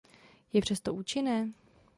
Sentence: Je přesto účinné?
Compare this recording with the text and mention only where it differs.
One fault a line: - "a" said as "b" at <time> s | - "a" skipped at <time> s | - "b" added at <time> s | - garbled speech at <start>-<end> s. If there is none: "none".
none